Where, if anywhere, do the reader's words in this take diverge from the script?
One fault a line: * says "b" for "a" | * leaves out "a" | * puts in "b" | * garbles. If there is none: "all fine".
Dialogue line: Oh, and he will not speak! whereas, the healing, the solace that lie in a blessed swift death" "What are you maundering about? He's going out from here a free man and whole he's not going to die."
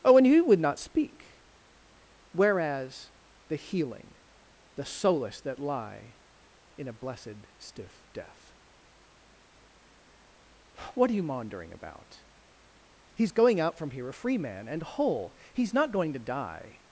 * says "would" for "will"
* says "stiff" for "swift"